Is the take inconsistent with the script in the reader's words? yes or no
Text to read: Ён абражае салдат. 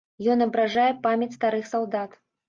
yes